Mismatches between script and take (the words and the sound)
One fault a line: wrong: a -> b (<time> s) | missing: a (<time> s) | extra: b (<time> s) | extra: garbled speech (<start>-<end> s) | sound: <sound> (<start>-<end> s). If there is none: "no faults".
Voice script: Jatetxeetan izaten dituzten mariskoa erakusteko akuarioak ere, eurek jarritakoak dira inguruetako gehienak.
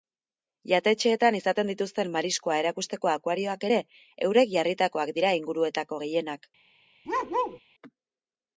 sound: bark (7.0-7.6 s)